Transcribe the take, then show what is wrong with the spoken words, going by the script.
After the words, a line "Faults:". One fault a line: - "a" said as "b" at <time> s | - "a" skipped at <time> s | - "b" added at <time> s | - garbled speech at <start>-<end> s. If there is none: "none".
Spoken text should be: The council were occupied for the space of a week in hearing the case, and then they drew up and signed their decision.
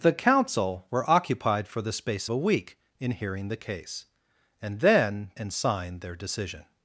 The council were occupied for the space a week in hearing the case, and then and signed their decision.
Faults:
- "of" skipped at 2.3 s
- "they drew up" skipped at 5.3 s